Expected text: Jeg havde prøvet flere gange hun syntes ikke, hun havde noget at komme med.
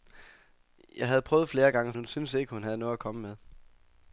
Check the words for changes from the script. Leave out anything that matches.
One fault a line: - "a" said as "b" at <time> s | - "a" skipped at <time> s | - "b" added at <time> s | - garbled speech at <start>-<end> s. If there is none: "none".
none